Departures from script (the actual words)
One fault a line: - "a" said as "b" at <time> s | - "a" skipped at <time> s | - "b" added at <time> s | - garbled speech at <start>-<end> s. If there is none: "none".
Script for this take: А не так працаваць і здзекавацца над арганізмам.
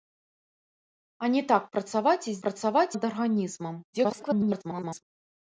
- "здзекавацца" said as "працаваць" at 2.5 s
- garbled speech at 3.9-5.0 s